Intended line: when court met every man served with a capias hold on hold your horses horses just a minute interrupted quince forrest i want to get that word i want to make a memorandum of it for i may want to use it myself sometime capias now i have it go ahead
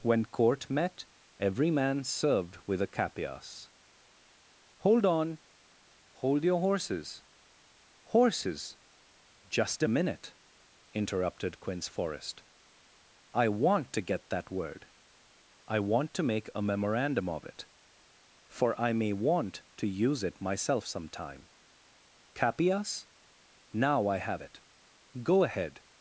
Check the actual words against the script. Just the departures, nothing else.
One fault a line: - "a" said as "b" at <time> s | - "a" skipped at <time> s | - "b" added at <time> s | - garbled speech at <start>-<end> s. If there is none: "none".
none